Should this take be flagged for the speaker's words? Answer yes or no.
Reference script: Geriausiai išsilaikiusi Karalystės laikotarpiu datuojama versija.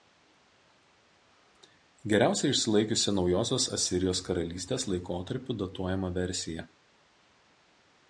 yes